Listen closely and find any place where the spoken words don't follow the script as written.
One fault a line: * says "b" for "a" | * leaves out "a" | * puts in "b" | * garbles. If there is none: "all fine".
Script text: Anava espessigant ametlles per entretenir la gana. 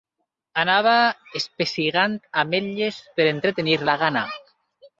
all fine